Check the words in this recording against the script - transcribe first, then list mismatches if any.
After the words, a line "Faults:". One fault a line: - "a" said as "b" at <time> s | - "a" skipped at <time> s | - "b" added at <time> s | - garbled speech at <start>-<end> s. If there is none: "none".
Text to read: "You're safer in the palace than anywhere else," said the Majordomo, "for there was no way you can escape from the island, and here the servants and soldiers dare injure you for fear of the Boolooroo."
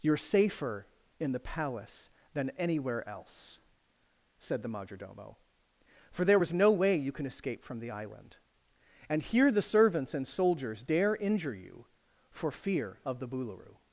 "You're safer in the palace than anywhere else," said the Majordomo, "for there was no way you can escape from the island, and here the servants and soldiers dare injure you for fear of the Boolooroo."
Faults:
none